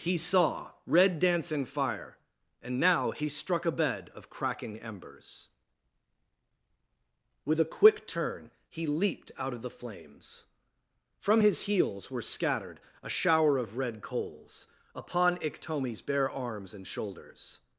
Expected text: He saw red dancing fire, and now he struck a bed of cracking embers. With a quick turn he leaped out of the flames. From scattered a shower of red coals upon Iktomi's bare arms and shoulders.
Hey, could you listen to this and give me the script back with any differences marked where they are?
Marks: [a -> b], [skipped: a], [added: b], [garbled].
He saw red dancing fire, and now he struck a bed of cracking embers. With a quick turn he leaped out of the flames. From [added: his heels were] scattered a shower of red coals upon Iktomi's bare arms and shoulders.